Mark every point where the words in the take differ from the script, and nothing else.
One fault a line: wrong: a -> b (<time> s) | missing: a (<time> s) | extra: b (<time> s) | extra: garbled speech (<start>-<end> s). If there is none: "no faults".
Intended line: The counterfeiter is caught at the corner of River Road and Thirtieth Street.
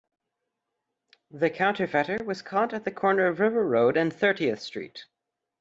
wrong: is -> was (2.2 s)